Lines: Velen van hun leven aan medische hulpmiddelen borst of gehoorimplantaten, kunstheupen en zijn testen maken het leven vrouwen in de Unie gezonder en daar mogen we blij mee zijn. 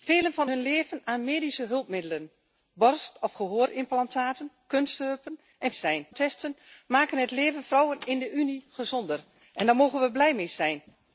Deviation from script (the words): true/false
false